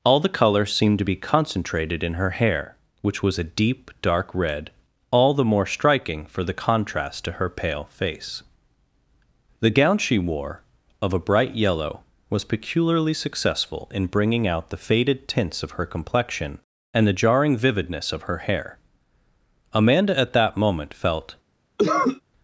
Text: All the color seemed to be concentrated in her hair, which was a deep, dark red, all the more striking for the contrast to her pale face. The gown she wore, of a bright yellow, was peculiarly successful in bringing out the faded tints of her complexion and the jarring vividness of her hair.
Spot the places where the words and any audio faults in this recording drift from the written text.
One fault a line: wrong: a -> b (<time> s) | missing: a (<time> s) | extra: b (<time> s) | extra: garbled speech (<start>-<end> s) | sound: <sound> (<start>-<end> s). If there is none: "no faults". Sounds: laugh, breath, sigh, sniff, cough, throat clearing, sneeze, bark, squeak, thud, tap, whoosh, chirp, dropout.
extra: Amanda at that moment felt (19.7 s)
sound: cough (21.8-22.2 s)